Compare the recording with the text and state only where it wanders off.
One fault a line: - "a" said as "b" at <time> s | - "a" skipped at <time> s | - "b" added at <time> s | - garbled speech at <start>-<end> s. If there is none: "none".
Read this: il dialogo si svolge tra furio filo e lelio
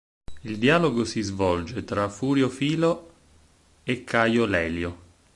- "caio" added at 4.0 s